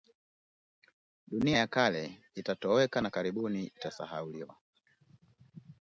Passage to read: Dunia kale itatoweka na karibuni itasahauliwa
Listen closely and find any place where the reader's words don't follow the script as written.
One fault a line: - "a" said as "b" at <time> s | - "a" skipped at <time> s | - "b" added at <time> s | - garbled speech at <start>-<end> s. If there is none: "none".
- "ya" added at 1.5 s